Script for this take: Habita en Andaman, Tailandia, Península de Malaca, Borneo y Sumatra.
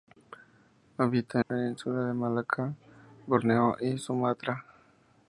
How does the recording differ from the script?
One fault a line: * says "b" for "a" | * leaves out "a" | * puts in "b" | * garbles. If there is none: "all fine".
* leaves out "en Andaman Tailandia"